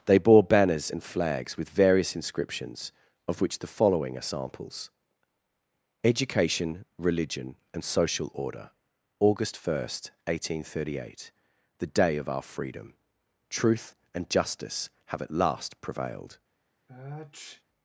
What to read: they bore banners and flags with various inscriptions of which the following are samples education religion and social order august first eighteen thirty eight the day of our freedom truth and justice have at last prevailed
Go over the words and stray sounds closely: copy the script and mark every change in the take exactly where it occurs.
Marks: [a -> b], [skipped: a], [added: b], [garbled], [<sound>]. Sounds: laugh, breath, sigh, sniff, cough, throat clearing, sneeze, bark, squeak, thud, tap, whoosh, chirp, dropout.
they bore banners and flags with various inscriptions of which the following are samples education religion and social order august first eighteen thirty eight the day of our freedom truth and justice have at last prevailed [sniff]